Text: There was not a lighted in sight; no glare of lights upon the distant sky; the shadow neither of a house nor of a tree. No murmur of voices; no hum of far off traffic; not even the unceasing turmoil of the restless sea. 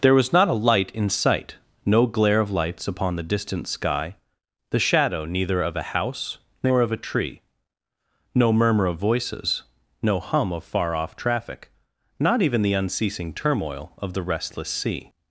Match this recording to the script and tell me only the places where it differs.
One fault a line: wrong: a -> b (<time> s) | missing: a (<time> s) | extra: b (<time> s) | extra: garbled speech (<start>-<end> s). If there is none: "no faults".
wrong: lighted -> light (0.5 s)